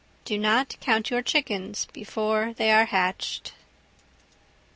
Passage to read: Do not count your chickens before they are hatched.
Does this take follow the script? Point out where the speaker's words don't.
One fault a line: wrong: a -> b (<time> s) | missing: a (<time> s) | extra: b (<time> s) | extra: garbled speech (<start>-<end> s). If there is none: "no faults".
no faults